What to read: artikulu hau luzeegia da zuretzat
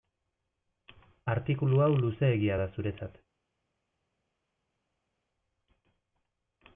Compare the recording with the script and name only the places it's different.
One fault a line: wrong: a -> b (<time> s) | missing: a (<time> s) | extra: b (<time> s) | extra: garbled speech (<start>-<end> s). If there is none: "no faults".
no faults